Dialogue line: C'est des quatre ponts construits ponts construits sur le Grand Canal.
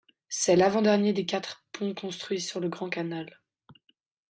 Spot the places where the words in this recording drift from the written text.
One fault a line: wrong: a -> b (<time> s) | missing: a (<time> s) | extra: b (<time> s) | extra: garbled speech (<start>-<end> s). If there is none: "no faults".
extra: l'avant dernier (0.6 s)
missing: ponts construits (2.4 s)